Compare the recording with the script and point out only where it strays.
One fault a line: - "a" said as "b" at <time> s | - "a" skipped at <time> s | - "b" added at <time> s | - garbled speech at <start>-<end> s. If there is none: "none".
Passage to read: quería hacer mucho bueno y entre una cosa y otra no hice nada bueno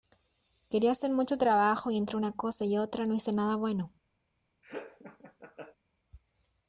- "bueno" said as "trabajo" at 1.4 s